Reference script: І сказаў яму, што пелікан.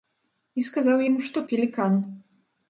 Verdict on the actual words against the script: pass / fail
pass